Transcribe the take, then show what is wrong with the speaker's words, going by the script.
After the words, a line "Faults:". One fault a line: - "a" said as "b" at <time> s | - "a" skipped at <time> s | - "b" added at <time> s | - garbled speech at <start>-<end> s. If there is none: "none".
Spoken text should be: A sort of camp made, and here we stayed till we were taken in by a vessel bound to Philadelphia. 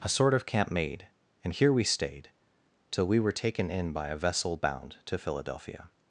A sort of camp made, and here we stayed till we were taken in by a vessel bound to Philadelphia.
Faults:
none